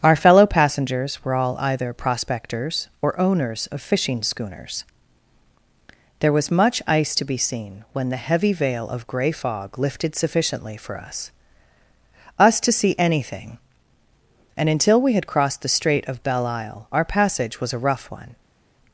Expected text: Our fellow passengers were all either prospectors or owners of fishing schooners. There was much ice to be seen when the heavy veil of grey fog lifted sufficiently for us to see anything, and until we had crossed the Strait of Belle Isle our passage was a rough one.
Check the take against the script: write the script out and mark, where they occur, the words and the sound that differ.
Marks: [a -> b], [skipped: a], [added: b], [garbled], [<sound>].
Our fellow passengers were all either prospectors or owners of fishing schooners. There was much ice to be seen when the heavy veil of grey fog lifted sufficiently for us [added: us] to see anything, and until we had crossed the Strait of Belle Isle our passage was a rough one.